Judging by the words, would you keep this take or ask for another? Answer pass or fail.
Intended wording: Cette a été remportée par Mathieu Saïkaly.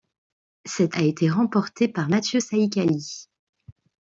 pass